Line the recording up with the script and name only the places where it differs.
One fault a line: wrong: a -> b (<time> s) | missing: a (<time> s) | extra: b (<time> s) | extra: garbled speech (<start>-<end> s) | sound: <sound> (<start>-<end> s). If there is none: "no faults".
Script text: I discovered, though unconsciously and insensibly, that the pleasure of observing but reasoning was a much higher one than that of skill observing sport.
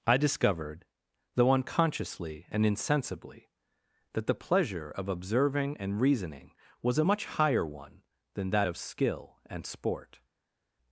wrong: but -> and (5.8 s)
wrong: observing -> and (9.5 s)